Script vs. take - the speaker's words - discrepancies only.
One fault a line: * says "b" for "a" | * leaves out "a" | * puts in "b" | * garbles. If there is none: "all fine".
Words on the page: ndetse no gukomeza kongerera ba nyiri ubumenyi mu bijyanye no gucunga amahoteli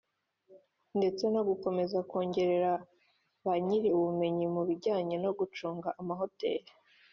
all fine